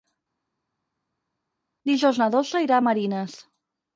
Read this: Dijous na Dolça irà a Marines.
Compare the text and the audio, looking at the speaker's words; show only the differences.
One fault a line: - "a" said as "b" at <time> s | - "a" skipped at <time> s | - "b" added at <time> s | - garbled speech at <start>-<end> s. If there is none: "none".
none